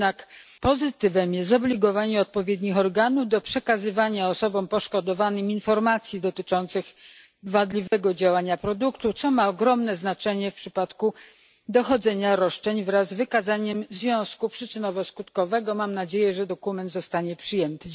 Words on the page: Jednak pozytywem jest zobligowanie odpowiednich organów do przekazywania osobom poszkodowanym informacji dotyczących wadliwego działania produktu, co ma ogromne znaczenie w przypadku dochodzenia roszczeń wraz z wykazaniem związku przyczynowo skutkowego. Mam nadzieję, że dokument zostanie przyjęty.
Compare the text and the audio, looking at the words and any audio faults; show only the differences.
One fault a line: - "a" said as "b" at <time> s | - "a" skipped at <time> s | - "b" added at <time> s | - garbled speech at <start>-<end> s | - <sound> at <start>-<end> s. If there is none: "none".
- dropout at 7.9-7.9 s